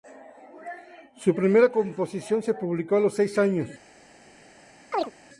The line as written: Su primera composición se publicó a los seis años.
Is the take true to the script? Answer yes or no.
yes